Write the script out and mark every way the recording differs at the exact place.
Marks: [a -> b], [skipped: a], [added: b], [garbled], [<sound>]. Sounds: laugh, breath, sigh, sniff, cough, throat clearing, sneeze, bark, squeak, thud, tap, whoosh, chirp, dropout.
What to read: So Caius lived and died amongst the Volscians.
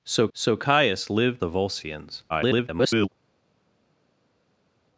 So [added: so] Caius lived [skipped: and died amongst] the Volscians. [garbled]